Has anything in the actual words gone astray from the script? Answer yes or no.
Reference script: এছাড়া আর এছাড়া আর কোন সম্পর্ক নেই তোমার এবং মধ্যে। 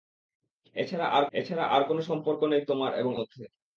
no